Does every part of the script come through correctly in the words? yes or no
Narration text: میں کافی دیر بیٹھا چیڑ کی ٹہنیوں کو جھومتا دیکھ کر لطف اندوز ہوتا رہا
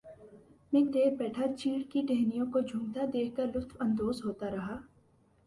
no